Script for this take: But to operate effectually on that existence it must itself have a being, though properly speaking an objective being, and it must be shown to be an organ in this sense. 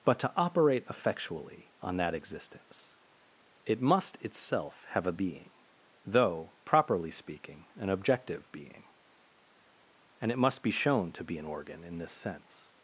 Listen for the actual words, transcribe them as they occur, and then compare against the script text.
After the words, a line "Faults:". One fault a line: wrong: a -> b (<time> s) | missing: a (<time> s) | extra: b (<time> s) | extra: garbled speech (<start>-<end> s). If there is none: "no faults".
But to operate effectually on that existence it must itself have a being, though properly speaking an objective being, and it must be shown to be an organ in this sense.
Faults:
no faults